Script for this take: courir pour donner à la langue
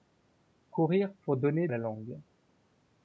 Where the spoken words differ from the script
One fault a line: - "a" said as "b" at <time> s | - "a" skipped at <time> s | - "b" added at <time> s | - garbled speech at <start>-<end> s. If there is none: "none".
none